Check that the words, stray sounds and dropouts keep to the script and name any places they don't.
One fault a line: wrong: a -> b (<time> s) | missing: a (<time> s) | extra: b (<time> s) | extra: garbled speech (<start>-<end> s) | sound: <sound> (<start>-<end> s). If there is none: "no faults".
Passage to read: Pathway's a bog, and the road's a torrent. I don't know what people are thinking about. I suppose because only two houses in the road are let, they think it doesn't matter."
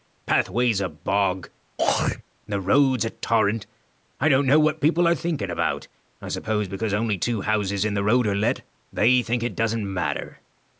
sound: throat clearing (1.8-2.2 s)